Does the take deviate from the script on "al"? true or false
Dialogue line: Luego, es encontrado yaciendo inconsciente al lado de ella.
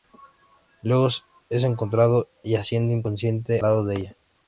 true